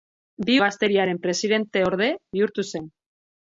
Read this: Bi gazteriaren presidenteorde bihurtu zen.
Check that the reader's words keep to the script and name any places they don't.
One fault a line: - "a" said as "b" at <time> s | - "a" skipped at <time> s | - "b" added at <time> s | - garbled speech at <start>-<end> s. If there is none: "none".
none